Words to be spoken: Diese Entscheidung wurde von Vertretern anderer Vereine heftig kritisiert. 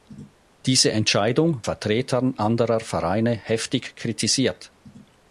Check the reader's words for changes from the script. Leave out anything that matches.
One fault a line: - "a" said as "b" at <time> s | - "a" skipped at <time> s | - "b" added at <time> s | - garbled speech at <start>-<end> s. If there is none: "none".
- "wurde von" skipped at 1.6 s